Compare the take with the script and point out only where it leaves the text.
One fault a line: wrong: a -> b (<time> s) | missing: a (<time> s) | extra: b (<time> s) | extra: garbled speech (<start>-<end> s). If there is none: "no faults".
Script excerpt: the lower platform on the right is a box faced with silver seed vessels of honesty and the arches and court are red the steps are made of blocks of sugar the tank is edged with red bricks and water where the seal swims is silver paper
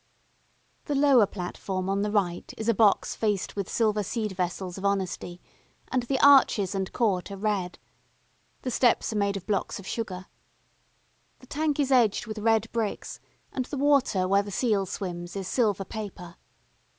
extra: the (13.7 s)